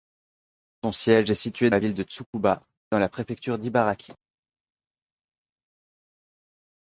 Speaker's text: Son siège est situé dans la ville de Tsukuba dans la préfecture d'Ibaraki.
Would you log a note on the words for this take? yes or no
yes